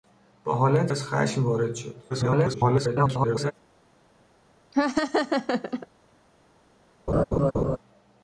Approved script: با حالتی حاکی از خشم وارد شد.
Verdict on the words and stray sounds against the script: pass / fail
fail